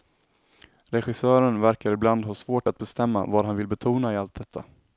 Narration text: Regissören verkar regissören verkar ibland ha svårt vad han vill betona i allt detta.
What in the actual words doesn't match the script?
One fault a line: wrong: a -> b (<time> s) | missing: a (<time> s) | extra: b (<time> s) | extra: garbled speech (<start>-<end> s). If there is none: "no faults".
missing: regissören verkar (1.9 s)
extra: att bestämma (2.7 s)